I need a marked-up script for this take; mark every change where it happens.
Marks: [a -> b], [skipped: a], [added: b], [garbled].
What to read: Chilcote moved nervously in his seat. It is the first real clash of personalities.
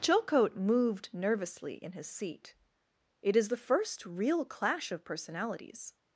Chilcote moved nervously in his seat. It is the first real clash of personalities.